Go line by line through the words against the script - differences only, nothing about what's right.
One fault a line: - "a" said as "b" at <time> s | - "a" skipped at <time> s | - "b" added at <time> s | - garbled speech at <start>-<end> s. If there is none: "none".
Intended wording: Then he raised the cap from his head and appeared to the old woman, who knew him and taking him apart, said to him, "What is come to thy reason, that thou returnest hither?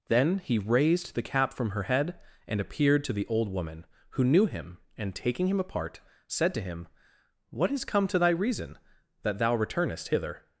- "his" said as "her" at 1.7 s